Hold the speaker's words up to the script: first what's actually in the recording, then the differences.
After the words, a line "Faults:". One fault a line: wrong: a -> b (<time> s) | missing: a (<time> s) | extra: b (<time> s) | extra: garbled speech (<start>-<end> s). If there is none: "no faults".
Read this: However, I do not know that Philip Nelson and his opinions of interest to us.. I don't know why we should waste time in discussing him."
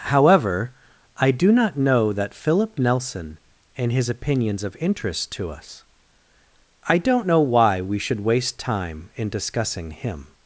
However, I do not know that Philip Nelson and his opinions of interest to us.. I don't know why we should waste time in discussing him."
Faults:
no faults